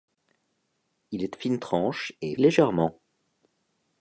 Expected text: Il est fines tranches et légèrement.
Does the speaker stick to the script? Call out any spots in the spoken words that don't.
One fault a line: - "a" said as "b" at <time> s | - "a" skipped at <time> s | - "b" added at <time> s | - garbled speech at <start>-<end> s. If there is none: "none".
none